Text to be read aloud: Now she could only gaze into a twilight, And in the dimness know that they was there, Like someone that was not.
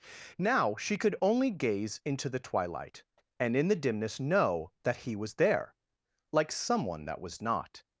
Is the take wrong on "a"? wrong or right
wrong